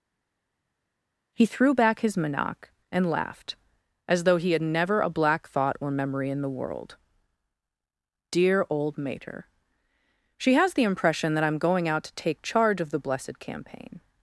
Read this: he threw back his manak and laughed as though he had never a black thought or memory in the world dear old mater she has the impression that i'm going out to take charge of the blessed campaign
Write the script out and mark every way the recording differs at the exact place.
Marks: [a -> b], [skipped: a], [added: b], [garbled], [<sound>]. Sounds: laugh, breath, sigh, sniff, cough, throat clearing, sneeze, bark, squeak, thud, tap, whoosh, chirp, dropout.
he threw back his manak and laughed as though he had never a black thought or memory in the world dear old mater she has the impression that i'm going out to take charge of the blessed campaign